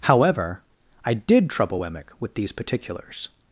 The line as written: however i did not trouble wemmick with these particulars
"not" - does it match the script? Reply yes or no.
no